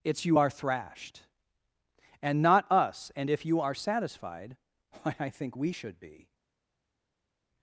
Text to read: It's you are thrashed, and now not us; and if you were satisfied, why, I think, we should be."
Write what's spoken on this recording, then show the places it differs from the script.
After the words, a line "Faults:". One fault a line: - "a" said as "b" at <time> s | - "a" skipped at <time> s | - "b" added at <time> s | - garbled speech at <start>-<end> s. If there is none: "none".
It's you are thrashed, and not us; and if you are satisfied, why, I think, we should be."
Faults:
- "now" skipped at 2.4 s
- "were" said as "are" at 3.6 s